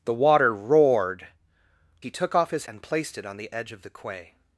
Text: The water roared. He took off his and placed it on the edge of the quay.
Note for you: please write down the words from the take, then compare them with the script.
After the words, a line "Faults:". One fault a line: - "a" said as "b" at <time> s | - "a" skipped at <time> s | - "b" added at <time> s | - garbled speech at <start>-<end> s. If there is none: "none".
The water roared. He took off his and placed it on the edge of the quay.
Faults:
none